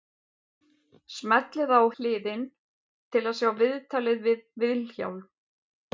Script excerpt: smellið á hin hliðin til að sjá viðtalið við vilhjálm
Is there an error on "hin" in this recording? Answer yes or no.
yes